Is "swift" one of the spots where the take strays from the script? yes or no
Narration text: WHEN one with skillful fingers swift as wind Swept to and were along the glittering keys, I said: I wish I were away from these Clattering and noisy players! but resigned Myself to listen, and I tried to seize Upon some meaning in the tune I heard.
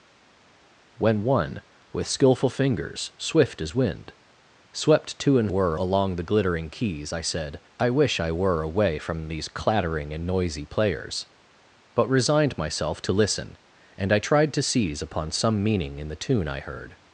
no